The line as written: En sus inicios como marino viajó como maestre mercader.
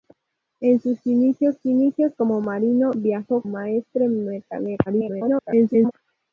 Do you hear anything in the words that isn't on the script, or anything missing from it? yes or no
yes